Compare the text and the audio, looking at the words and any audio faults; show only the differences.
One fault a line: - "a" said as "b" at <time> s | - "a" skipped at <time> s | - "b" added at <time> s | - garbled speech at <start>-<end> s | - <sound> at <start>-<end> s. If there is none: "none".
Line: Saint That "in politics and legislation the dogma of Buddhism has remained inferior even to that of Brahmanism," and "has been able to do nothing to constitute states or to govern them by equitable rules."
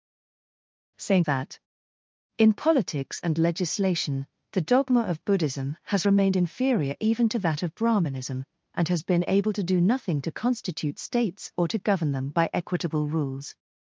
none